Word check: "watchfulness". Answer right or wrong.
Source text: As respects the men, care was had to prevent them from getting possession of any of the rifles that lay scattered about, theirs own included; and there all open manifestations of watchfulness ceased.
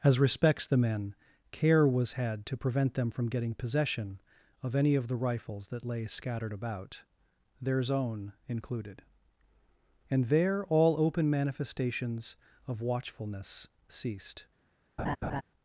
right